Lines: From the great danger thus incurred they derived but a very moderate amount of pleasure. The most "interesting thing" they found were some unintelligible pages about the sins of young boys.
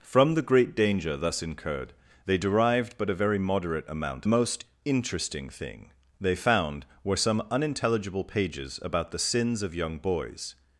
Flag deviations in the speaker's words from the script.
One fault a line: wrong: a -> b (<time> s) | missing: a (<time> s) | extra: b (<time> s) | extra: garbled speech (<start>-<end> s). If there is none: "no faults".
missing: of pleasure The (4.3 s)